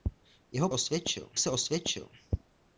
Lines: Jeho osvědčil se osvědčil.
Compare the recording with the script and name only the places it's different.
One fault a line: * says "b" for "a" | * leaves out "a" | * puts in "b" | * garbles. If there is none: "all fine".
all fine